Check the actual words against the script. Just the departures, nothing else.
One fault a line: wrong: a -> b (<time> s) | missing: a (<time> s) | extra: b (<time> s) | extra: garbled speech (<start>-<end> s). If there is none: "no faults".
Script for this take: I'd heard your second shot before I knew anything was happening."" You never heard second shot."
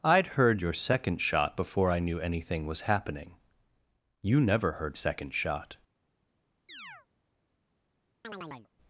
no faults